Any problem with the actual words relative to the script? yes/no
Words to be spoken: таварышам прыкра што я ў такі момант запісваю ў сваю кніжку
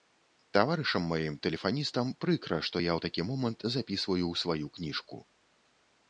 yes